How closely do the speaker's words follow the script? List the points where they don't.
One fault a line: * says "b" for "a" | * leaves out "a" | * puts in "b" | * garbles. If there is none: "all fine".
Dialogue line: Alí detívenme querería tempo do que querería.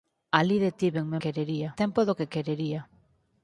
all fine